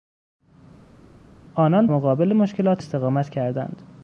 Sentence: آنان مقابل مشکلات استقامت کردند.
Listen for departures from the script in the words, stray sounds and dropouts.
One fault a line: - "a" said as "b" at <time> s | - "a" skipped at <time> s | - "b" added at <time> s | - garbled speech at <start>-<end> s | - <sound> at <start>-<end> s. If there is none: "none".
none